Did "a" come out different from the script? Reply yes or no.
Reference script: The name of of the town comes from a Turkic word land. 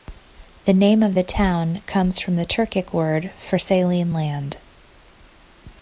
yes